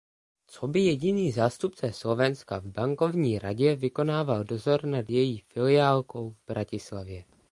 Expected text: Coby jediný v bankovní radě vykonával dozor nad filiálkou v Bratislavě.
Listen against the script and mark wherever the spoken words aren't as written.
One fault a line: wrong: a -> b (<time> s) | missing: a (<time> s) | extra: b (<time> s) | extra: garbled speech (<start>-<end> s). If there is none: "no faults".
extra: zástupce Slovenska (1.3 s)
extra: její (5.1 s)